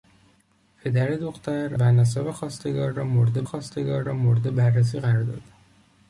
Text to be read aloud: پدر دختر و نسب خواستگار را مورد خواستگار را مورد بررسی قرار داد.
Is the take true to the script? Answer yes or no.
yes